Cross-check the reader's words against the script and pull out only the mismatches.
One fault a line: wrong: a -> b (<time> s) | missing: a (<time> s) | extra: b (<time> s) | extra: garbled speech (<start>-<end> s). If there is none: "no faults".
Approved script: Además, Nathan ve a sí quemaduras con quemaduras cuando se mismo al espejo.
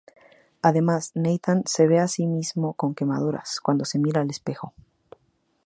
extra: se (1.7 s)
wrong: quemaduras -> mismo (2.3 s)
wrong: mismo -> mira (4.0 s)